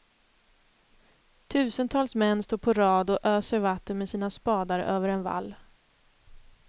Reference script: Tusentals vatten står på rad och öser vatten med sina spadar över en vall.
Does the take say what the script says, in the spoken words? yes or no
no